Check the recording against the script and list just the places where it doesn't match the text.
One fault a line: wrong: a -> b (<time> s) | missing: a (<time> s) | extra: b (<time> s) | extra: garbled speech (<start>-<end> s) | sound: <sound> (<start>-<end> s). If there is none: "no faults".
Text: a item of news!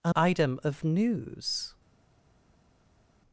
no faults